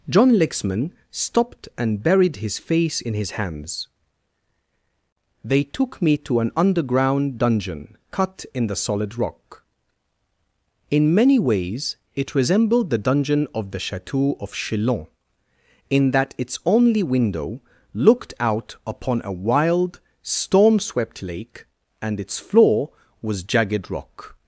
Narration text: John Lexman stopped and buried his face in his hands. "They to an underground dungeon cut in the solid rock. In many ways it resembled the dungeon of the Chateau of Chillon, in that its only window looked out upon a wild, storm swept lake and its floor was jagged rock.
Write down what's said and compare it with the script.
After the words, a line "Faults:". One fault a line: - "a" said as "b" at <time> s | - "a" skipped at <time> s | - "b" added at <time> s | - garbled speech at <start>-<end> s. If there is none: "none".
John Lexman stopped and buried his face in his hands. "They took me to an underground dungeon cut in the solid rock. In many ways it resembled the dungeon of the Chateau of Chillon, in that its only window looked out upon a wild, storm swept lake and its floor was jagged rock.
Faults:
- "took me" added at 5.6 s